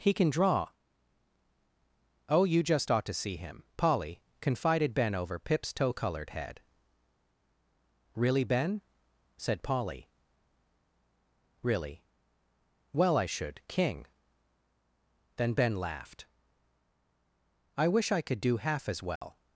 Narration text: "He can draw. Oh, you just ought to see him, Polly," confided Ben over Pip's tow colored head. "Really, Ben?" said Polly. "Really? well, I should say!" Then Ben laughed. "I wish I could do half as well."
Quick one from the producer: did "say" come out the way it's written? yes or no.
no